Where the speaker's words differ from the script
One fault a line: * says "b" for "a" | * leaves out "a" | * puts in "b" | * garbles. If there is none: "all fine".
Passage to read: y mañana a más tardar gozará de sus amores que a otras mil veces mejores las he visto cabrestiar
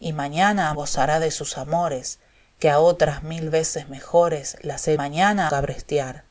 * leaves out "más tardar"
* says "mañana" for "visto"